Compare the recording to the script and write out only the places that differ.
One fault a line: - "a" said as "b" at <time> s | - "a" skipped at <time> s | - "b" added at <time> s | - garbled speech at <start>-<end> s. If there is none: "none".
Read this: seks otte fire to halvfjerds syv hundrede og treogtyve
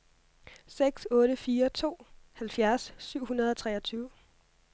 none